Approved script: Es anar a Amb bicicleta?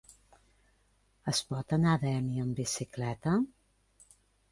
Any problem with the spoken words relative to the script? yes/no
yes